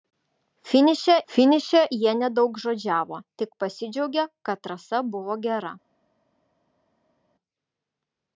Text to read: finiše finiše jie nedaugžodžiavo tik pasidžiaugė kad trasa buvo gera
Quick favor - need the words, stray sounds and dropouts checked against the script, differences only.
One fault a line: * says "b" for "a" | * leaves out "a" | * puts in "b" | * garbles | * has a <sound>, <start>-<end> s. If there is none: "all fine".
all fine